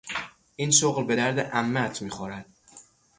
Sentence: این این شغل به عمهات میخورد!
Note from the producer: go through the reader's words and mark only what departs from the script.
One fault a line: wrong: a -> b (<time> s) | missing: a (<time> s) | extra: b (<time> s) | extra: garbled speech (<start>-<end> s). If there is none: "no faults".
missing: این (0.7 s)
extra: درد (1.1 s)